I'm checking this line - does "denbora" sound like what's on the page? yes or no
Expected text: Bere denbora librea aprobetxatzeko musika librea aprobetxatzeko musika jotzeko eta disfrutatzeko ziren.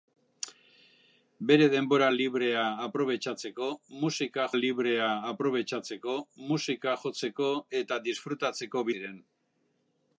yes